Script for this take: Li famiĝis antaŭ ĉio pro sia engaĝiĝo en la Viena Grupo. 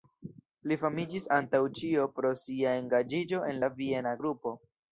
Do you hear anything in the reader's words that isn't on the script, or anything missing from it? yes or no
no